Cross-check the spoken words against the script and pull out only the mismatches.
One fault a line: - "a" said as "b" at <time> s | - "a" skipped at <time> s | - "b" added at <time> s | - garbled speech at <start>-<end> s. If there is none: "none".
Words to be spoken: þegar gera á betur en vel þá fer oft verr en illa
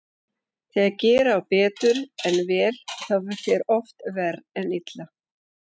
none